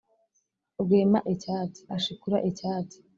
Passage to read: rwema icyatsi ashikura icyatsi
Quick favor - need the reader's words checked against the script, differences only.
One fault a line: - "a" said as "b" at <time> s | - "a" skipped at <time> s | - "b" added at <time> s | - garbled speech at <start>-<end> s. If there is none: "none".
none